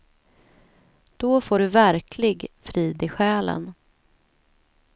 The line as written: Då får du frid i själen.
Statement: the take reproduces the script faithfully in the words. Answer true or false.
false